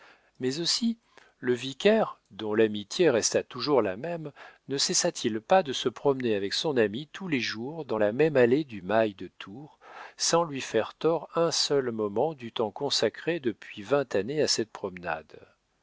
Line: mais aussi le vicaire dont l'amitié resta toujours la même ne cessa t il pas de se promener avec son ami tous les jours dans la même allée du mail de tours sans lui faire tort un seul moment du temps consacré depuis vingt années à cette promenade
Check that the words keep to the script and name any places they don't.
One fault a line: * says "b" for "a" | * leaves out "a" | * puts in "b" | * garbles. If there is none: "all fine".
all fine